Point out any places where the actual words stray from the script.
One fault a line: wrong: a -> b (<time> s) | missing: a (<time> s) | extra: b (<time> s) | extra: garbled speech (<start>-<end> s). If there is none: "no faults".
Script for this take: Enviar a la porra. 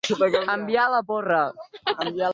no faults